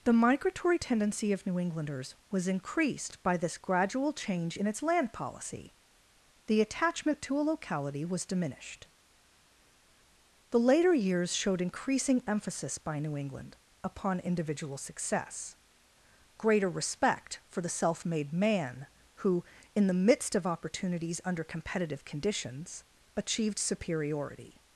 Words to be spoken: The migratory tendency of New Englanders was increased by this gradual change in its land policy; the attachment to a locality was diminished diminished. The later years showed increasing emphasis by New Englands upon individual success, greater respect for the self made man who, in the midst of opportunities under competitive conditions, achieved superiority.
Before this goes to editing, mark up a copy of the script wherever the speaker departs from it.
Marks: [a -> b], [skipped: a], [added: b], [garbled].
The migratory tendency of New Englanders was increased by this gradual change in its land policy; the attachment to a locality was diminished [skipped: diminished.] The later years showed increasing emphasis by New [Englands -> England] upon individual success, greater respect for the self made man who, in the midst of opportunities under competitive conditions, achieved superiority.